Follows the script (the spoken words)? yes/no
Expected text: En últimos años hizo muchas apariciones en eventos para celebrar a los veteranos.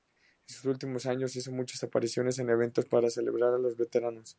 no